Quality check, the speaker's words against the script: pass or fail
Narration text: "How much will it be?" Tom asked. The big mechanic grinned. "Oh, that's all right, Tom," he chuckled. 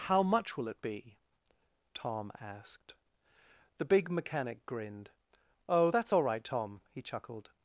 pass